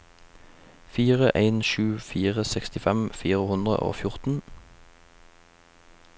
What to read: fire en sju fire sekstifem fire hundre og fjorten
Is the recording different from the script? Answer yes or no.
no